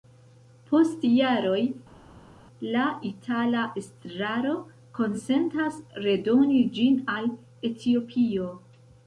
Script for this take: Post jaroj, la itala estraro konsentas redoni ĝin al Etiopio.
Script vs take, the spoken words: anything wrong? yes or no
no